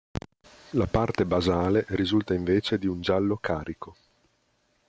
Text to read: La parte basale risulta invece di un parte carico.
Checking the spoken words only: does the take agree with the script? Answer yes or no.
no